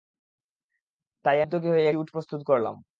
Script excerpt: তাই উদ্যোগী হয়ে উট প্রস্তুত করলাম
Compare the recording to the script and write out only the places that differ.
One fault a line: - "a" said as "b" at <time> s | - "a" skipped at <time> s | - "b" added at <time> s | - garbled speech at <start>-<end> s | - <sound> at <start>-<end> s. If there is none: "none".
none